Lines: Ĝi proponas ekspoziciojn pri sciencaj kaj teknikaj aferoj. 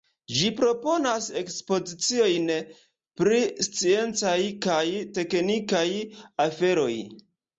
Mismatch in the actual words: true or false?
false